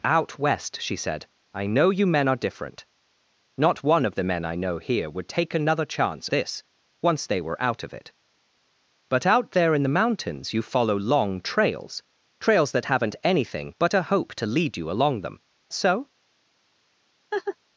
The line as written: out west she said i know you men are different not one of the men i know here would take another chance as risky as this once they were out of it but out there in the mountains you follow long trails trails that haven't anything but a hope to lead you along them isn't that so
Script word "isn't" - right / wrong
wrong